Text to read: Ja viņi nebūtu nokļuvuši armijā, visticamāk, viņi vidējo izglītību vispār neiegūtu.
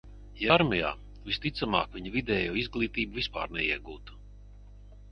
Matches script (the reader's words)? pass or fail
fail